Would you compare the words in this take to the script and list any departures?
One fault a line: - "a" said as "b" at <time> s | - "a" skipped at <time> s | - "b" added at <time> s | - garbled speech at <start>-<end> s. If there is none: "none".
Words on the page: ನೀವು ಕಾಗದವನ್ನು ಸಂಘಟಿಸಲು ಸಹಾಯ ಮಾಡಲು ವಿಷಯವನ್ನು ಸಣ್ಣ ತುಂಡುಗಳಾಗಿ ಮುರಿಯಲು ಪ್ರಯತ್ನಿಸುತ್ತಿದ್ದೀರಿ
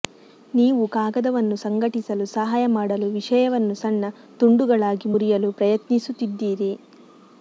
none